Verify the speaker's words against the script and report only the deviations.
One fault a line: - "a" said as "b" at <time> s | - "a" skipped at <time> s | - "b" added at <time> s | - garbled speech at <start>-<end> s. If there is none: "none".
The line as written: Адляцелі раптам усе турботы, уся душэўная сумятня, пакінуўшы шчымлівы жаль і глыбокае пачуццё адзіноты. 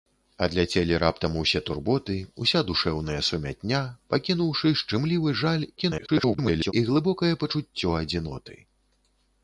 - garbled speech at 5.8-6.7 s